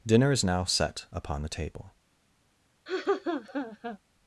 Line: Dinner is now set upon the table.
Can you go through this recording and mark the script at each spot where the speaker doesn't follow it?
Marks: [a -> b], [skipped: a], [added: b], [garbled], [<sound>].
Dinner is now set upon the table. [laugh]